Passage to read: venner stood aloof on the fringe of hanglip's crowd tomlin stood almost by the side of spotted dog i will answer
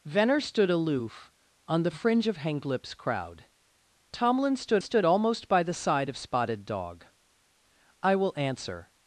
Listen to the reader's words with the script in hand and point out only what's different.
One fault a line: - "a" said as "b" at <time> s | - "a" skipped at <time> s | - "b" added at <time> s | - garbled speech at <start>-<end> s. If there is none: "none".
- "stood" added at 4.8 s